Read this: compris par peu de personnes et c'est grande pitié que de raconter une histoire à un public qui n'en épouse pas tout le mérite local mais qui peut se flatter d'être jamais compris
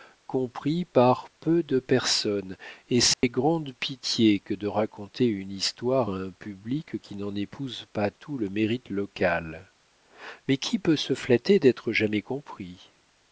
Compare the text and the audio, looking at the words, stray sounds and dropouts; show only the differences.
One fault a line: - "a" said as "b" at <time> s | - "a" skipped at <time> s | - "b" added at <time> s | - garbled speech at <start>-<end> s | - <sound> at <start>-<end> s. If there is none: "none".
- dropout at 3.1-3.2 s